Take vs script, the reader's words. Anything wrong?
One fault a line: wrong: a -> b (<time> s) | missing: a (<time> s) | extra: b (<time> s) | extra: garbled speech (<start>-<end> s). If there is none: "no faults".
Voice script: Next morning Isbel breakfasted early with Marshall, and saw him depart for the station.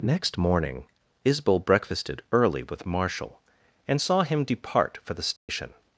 no faults